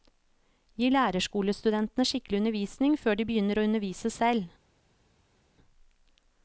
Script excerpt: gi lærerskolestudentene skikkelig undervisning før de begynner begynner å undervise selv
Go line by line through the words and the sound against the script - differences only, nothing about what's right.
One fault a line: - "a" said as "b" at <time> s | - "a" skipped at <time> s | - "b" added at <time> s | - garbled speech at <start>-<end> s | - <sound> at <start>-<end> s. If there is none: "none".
- "begynner" skipped at 3.6 s